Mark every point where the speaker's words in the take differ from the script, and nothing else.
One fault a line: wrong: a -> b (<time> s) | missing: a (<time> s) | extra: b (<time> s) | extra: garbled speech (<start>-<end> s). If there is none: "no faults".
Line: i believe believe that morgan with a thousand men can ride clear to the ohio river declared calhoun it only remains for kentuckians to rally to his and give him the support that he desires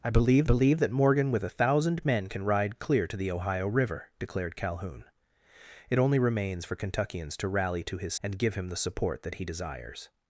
no faults